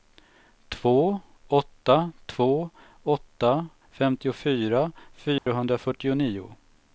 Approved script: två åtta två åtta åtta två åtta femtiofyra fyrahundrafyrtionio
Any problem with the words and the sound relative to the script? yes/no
yes